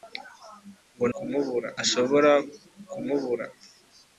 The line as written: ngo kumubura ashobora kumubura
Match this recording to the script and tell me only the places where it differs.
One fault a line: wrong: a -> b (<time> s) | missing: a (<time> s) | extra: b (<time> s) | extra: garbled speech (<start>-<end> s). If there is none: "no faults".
no faults